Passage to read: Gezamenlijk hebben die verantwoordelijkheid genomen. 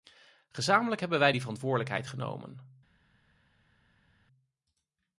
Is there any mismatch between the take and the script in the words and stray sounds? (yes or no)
yes